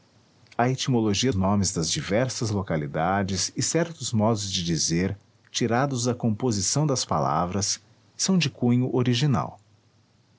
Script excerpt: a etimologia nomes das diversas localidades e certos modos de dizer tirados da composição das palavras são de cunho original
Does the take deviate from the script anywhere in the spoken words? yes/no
no